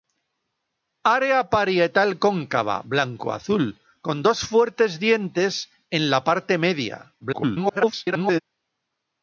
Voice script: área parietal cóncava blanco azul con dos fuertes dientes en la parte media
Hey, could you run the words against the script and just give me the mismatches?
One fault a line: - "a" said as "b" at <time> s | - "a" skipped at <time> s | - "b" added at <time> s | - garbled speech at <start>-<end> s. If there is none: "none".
- garbled speech at 7.2-8.4 s